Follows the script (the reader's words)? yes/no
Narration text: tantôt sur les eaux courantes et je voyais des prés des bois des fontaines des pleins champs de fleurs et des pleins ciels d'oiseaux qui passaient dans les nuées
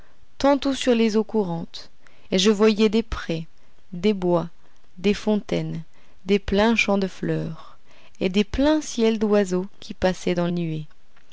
no